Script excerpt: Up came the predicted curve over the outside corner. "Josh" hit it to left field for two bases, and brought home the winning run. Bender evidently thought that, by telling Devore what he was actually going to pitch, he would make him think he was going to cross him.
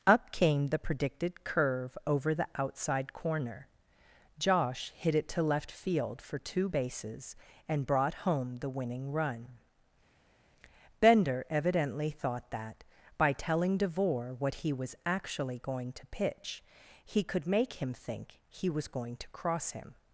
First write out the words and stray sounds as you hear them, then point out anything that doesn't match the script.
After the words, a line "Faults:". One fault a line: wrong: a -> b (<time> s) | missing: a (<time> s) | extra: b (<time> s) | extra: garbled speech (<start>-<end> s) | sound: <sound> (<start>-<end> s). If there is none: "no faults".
Up came the predicted curve over the outside corner. "Josh" hit it to left field for two bases, and brought home the winning run. Bender evidently thought that, by telling Devore what he was actually going to pitch, he could make him think he was going to cross him.
Faults:
wrong: would -> could (17.2 s)